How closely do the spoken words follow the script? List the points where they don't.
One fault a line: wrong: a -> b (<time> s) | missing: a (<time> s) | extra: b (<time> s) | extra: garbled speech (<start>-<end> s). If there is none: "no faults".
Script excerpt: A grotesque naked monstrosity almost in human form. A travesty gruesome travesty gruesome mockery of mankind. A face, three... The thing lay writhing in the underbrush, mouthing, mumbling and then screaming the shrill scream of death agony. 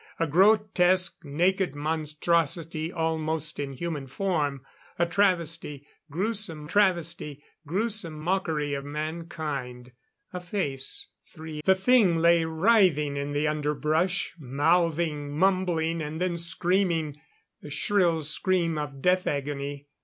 no faults